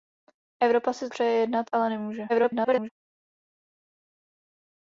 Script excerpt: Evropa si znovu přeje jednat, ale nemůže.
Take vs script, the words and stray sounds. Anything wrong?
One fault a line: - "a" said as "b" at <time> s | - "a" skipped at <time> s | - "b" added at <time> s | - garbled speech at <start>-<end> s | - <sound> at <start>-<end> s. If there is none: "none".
- "znovu" skipped at 1.1 s
- garbled speech at 2.3-2.9 s